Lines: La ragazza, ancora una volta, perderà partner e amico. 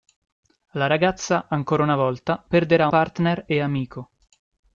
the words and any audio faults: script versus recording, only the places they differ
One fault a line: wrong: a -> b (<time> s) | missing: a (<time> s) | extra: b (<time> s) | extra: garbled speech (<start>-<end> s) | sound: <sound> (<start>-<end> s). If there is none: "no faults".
no faults